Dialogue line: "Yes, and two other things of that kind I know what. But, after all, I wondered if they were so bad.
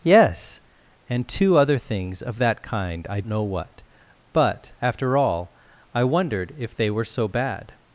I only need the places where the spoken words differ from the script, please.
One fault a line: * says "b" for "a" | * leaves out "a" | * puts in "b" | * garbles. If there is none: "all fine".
all fine